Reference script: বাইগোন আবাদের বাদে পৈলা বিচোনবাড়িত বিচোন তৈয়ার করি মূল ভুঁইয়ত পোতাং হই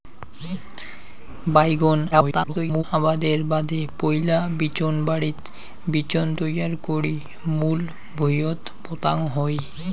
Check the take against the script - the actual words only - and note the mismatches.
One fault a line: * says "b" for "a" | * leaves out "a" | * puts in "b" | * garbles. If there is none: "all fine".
* garbles